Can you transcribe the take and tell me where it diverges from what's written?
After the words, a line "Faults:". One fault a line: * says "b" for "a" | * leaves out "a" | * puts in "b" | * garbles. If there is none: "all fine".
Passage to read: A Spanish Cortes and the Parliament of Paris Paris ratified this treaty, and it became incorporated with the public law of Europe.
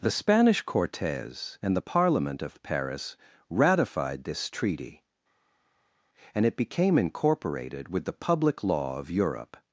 The Spanish Cortes and the Parliament of Paris ratified this treaty, and it became incorporated with the public law of Europe.
Faults:
* says "The" for "A"
* leaves out "Paris"